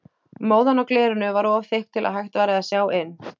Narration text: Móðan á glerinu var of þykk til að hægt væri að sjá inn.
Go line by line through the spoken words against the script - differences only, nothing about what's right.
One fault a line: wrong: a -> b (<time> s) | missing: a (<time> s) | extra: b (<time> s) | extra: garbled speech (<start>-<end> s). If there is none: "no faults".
no faults